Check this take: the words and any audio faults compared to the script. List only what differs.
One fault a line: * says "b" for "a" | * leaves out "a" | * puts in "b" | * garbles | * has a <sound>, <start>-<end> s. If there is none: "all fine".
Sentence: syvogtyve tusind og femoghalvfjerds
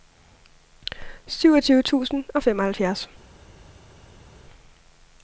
all fine